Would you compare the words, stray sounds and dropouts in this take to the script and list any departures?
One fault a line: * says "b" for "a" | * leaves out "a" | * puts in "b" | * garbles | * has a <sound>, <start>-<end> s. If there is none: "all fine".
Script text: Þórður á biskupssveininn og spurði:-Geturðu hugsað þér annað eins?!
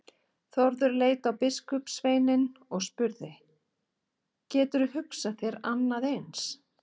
* puts in "leit"